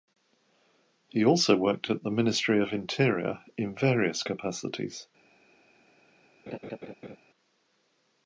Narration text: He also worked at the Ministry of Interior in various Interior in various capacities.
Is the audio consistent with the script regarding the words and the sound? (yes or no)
no